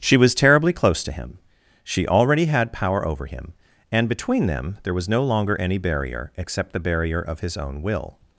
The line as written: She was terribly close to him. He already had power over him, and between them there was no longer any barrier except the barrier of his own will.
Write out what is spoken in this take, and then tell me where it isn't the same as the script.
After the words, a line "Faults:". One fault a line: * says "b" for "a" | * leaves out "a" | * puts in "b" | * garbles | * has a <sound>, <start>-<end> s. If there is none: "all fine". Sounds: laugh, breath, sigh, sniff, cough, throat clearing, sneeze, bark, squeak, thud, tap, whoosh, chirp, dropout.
She was terribly close to him. She already had power over him, and between them there was no longer any barrier except the barrier of his own will.
Faults:
* says "She" for "He"